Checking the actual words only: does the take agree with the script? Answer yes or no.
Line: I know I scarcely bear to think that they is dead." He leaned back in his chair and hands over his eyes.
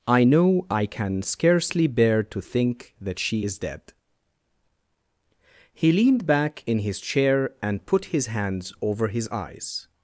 no